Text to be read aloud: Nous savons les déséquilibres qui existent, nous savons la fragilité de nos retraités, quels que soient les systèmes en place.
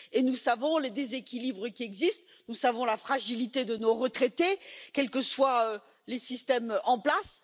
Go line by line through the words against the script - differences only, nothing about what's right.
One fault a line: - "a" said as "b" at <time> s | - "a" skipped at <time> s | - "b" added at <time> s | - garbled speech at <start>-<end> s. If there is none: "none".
none